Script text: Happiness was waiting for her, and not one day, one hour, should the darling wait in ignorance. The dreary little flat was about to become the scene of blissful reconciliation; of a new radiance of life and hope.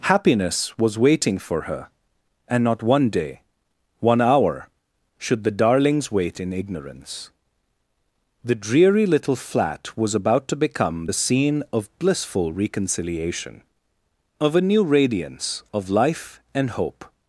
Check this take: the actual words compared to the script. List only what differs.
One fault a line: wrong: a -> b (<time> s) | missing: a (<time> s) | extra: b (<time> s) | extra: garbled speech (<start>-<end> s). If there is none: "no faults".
wrong: darling -> darlings (5.5 s)